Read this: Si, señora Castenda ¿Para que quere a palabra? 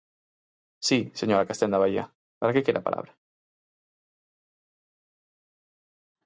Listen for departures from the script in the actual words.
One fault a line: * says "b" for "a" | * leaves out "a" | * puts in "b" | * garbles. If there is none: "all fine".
* puts in "Baía"